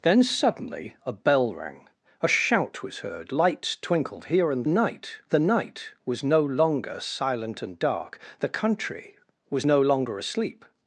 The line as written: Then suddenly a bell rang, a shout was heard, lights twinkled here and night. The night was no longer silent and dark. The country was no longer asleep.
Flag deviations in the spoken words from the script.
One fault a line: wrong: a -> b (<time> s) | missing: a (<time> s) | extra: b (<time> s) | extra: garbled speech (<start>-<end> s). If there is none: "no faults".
no faults